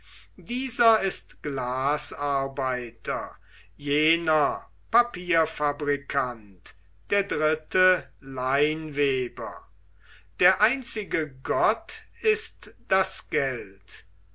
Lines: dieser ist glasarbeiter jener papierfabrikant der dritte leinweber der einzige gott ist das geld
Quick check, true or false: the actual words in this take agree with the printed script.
true